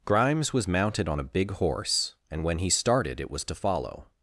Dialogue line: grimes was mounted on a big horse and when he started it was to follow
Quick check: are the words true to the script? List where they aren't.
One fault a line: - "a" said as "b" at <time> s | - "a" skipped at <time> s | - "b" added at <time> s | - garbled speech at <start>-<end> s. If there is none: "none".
none